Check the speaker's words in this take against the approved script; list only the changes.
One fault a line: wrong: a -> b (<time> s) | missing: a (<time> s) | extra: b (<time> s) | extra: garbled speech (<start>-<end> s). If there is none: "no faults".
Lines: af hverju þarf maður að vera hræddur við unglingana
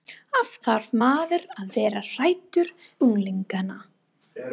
missing: hverju (0.5 s)
missing: við (2.7 s)